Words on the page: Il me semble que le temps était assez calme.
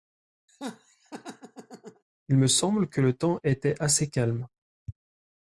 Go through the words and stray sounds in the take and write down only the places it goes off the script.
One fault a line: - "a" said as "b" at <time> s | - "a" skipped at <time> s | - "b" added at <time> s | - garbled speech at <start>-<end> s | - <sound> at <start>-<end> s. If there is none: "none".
- laugh at 0.5-2.0 s